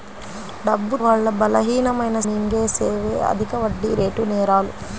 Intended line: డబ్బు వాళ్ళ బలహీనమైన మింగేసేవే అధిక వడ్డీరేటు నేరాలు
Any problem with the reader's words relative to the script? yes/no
no